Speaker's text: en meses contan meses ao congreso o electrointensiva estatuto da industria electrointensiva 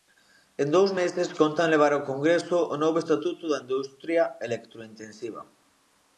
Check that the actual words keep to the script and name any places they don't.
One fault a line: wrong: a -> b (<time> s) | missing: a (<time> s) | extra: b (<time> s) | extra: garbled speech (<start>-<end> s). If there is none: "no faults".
extra: dous (0.8 s)
wrong: meses -> levar (1.7 s)
wrong: electrointensiva -> novo (2.8 s)